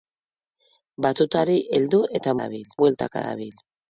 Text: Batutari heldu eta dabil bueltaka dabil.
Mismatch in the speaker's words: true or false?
false